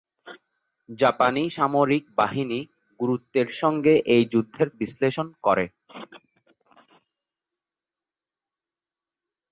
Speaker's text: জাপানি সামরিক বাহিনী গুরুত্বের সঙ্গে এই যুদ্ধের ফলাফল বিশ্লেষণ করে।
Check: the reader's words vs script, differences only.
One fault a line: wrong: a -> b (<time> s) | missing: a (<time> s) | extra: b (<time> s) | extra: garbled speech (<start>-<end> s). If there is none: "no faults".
missing: ফলাফল (4.7 s)